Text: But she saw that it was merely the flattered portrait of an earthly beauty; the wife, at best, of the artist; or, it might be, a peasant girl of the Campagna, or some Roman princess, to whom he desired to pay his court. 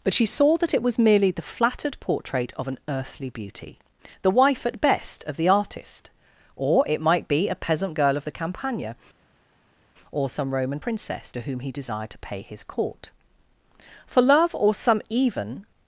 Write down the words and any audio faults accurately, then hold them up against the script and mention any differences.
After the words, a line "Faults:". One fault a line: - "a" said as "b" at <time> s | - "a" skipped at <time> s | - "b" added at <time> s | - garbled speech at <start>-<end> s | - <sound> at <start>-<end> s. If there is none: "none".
But she saw that it was merely the flattered portrait of an earthly beauty; the wife, at best, of the artist; or, it might be, a peasant girl of the Campagna, or some Roman princess, to whom he desired to pay his court. For love, or some even
Faults:
- "For love or some even" added at 14.1 s